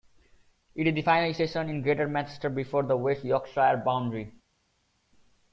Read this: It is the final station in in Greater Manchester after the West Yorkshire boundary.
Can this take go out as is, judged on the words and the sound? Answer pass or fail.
fail